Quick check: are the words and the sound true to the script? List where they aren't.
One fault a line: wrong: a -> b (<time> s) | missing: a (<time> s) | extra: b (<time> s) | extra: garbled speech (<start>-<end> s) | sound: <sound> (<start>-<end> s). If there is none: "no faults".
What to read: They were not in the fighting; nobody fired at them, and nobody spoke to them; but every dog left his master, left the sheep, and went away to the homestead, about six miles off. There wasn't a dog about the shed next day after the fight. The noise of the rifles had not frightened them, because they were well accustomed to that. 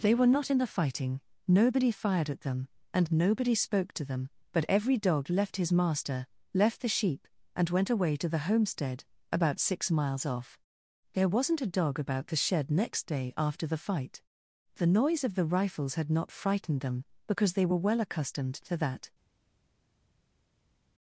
no faults